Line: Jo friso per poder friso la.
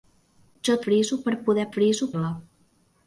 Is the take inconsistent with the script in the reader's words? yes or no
no